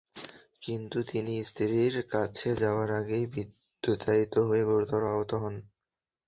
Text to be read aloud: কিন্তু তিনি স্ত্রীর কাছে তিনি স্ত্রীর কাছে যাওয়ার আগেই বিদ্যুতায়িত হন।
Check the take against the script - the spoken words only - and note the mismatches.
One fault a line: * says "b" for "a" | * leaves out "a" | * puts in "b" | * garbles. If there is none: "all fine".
* says "যাওয়ার আগেই বিদ্যুতায়িত হয়ে গুরুতর আহত" for "তিনি স্ত্রীর কাছে যাওয়ার আগেই বিদ্যুতায়িত"